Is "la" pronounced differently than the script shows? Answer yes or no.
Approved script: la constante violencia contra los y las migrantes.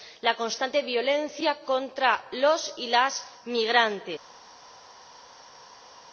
no